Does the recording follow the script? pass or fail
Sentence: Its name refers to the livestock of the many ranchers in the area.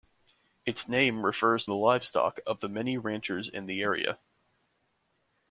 fail